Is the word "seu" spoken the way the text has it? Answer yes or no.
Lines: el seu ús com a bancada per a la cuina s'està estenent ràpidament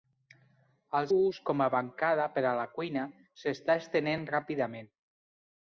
no